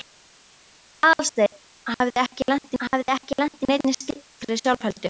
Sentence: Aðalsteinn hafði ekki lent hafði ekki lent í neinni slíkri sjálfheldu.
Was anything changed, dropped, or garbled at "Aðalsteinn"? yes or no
no